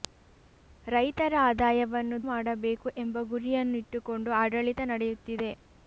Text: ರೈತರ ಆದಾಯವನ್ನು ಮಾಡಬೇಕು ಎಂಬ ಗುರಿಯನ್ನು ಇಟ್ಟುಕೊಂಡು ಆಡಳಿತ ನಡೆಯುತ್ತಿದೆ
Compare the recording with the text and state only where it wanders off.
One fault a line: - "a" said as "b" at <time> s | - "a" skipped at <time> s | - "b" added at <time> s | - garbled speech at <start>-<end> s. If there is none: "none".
none